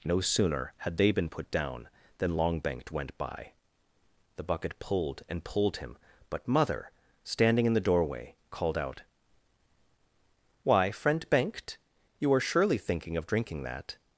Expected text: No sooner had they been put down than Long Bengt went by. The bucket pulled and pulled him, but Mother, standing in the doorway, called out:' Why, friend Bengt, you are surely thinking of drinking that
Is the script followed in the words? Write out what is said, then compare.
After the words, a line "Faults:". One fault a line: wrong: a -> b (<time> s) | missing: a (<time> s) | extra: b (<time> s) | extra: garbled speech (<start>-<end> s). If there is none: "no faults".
No sooner had they been put down than Long Bengt went by. The bucket pulled and pulled him, but Mother, standing in the doorway, called out:' Why, friend Bengt, you are surely thinking of drinking that
Faults:
no faults